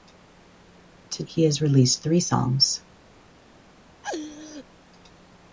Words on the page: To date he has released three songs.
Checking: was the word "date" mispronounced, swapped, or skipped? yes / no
yes